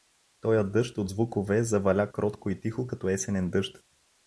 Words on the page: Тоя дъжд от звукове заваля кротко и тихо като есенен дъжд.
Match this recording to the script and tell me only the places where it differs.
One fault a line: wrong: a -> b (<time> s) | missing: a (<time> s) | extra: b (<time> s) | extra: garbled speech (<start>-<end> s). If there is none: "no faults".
no faults